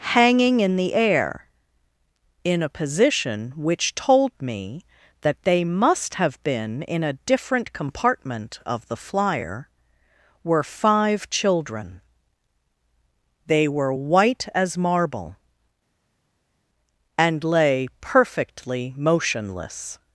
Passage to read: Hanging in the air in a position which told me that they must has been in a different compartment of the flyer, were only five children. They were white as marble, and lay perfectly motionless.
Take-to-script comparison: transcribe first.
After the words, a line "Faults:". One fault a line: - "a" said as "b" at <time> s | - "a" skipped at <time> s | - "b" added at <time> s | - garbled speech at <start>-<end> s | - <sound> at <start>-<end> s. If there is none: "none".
Hanging in the air in a position which told me that they must have been in a different compartment of the flyer, were five children. They were white as marble, and lay perfectly motionless.
Faults:
- "has" said as "have" at 6.2 s
- "only" skipped at 10.6 s